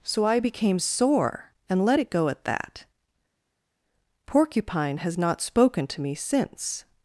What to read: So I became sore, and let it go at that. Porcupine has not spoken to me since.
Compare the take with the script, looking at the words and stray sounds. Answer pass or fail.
pass